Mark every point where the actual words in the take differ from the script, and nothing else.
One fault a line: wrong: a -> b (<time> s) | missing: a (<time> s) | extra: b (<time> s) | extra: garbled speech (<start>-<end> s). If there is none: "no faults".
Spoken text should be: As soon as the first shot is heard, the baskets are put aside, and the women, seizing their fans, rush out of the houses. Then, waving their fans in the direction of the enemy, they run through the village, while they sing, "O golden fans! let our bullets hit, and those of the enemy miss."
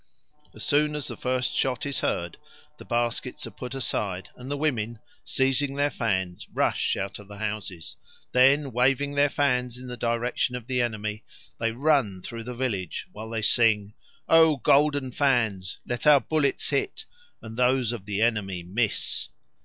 no faults